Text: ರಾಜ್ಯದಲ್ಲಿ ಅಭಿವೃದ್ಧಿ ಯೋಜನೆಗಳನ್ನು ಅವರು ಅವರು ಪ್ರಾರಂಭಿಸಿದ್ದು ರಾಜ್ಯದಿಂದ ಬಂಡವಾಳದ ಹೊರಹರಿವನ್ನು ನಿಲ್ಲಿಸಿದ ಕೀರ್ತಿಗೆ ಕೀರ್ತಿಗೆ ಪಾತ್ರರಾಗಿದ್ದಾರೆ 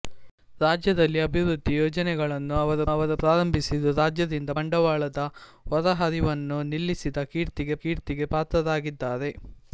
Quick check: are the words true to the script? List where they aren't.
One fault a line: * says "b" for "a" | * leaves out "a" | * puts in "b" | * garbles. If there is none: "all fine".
all fine